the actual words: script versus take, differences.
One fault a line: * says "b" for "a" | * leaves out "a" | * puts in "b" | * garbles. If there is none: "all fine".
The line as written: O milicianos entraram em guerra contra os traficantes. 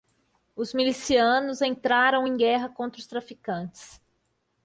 * says "Os" for "O"